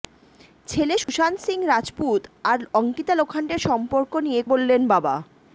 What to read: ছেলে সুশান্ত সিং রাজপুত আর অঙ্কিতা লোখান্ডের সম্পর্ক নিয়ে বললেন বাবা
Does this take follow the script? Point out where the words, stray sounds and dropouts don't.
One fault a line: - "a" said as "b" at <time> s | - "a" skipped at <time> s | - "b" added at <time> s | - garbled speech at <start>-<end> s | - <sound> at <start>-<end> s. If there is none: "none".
- dropout at 1.0-1.1 s